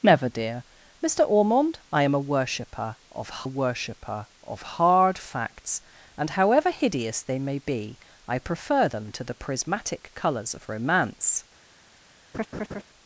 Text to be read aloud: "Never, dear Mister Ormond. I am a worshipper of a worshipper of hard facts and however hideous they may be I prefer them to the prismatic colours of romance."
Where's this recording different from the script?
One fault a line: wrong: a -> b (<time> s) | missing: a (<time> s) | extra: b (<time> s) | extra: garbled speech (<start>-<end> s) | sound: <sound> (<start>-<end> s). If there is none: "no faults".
sound: laugh (12.3-12.8 s)